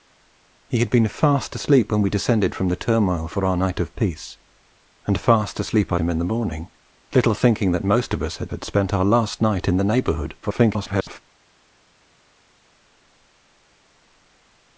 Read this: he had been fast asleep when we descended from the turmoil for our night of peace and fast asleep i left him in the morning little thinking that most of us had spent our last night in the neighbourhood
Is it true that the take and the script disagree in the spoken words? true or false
true